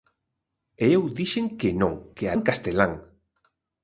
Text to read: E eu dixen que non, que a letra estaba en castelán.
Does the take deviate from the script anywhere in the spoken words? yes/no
yes